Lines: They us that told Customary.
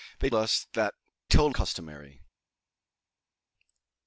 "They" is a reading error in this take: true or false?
false